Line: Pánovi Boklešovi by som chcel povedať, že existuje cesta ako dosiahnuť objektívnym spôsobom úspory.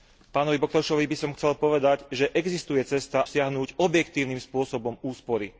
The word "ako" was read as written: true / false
false